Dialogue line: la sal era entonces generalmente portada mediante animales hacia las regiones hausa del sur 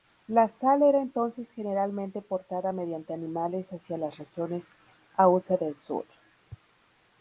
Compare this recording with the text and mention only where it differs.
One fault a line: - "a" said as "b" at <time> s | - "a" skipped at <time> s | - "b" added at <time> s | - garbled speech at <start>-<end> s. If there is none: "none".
none